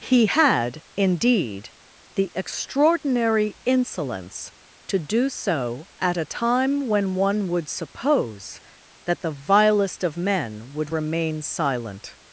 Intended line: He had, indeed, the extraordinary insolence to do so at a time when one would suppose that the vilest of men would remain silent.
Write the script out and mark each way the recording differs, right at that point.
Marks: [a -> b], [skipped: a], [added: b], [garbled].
He had, indeed, the extraordinary insolence to do so at a time when one would suppose that the vilest of men would remain silent.